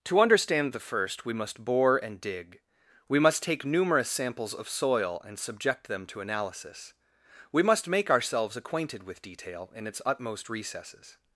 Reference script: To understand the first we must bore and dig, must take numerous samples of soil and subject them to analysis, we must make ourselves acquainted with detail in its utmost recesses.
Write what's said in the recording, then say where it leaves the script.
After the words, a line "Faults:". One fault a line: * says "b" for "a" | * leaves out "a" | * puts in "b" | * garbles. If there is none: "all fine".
To understand the first we must bore and dig, we must take numerous samples of soil and subject them to analysis, we must make ourselves acquainted with detail in its utmost recesses.
Faults:
* puts in "we"